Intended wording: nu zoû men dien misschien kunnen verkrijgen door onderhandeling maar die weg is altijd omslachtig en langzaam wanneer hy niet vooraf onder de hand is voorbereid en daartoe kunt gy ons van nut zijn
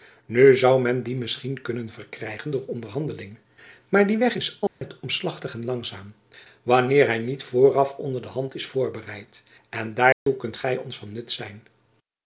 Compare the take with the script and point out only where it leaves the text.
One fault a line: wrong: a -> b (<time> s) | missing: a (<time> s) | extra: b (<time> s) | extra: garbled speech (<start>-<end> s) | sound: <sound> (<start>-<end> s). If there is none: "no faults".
sound: dropout (4.7-4.8 s)
sound: dropout (10.1-10.3 s)